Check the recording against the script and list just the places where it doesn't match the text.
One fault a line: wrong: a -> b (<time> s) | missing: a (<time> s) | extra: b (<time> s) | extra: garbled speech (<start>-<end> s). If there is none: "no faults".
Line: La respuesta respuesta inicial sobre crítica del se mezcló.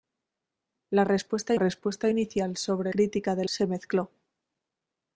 no faults